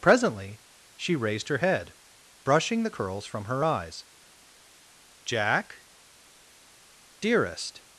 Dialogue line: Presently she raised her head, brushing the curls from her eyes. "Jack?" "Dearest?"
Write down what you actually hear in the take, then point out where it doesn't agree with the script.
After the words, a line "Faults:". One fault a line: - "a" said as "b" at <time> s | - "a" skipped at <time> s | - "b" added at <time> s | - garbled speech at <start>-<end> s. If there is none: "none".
Presently she raised her head, brushing the curls from her eyes. "Jack?" "Dearest?"
Faults:
none